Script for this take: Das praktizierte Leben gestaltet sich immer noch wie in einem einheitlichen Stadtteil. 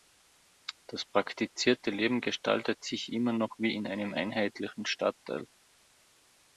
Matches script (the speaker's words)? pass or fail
pass